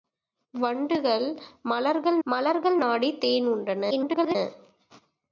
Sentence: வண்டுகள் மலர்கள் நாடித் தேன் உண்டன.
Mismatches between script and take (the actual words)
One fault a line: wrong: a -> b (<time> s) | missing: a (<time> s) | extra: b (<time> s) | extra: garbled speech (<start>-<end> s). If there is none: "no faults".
extra: மலர்கள் (2.2 s)
extra: garbled speech (3.9-4.4 s)